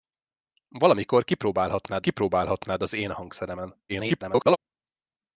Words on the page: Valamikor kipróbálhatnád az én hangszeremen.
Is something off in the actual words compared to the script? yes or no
yes